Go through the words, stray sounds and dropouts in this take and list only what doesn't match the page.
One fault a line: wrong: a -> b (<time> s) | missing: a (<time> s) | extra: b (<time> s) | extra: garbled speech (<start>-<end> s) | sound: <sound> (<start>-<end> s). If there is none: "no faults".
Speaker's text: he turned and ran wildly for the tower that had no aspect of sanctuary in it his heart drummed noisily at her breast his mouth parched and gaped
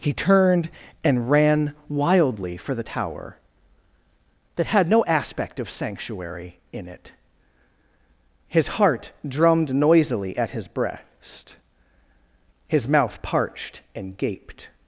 wrong: her -> his (10.5 s)